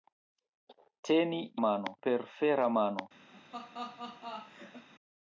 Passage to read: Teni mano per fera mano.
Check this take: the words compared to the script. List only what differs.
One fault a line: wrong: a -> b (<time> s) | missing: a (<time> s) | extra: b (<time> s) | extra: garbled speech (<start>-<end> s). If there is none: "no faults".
no faults